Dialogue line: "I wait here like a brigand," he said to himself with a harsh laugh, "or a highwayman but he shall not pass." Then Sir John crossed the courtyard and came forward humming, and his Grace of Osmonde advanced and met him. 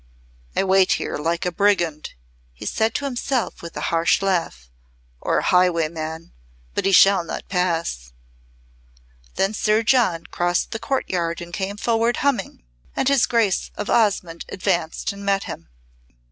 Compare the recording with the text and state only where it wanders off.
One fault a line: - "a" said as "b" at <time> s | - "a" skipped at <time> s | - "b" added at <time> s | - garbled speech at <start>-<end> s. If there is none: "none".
none